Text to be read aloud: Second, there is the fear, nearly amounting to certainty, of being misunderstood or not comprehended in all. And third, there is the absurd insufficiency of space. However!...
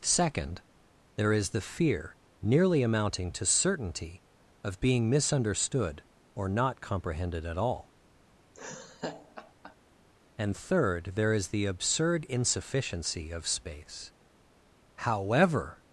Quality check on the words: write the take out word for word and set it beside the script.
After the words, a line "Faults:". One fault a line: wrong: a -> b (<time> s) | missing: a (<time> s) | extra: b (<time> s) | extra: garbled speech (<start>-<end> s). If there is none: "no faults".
Second, there is the fear, nearly amounting to certainty, of being misunderstood or not comprehended at all. And third, there is the absurd insufficiency of space. However!...
Faults:
wrong: in -> at (7.4 s)